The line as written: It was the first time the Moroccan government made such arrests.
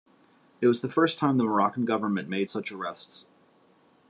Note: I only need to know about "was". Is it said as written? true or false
true